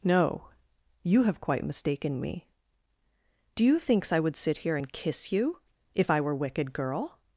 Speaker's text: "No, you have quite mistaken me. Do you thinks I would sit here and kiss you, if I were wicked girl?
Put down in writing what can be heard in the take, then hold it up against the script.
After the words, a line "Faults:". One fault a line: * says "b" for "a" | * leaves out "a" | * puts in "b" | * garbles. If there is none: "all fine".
"No, you have quite mistaken me. Do you thinks I would sit here and kiss you, if I were wicked girl?
Faults:
all fine